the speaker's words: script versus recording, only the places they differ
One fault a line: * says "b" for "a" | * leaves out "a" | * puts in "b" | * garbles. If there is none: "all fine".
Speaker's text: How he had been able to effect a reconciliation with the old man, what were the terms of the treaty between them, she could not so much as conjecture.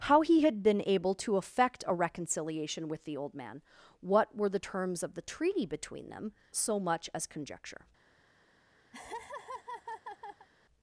* leaves out "she could not"